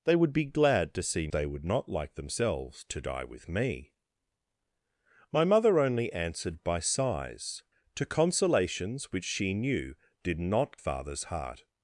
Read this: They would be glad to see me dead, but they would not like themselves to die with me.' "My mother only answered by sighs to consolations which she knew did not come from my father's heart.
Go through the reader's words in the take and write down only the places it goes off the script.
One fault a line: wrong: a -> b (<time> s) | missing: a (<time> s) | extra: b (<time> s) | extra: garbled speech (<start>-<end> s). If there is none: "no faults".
missing: me dead but (1.3 s)
missing: come from my (10.8 s)